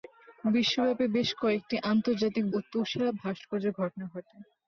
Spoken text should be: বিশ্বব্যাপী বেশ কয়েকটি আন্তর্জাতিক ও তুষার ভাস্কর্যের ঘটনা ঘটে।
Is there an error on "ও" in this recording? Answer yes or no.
no